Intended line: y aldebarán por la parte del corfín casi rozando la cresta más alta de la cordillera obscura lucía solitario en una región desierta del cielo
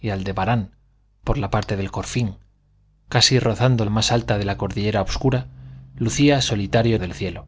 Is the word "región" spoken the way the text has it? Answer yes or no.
no